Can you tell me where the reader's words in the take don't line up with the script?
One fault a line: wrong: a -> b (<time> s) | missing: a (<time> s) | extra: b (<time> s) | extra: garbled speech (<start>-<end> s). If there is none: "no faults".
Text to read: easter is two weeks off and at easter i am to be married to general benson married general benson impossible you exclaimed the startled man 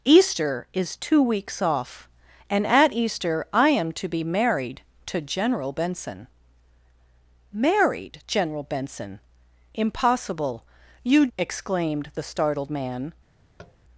no faults